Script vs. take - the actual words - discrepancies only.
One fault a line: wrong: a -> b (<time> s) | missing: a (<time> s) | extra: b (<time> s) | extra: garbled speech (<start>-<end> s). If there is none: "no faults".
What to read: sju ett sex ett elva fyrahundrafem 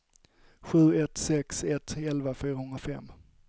no faults